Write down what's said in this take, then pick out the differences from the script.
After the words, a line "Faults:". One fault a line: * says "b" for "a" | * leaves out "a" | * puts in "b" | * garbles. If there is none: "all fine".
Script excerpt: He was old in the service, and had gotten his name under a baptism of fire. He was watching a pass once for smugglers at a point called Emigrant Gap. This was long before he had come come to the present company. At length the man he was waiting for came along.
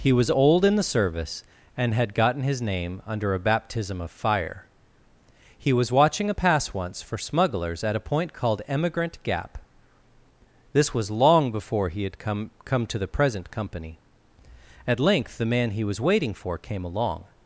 He was old in the service, and had gotten his name under a baptism of fire. He was watching a pass once for smugglers at a point called Emigrant Gap. This was long before he had come come to the present company. At length the man he was waiting for came along.
Faults:
all fine